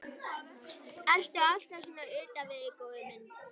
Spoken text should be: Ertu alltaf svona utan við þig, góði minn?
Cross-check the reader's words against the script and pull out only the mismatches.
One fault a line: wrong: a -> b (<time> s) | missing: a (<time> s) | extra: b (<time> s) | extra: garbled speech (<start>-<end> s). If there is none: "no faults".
no faults